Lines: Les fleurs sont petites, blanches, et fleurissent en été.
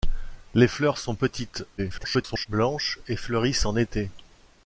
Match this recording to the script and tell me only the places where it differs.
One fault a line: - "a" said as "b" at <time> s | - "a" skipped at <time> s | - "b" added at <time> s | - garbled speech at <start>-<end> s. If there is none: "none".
- garbled speech at 1.8-2.5 s